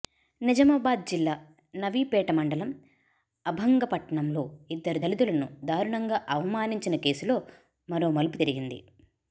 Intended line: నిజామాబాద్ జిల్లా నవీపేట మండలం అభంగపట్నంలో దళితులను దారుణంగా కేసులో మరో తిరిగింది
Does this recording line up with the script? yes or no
no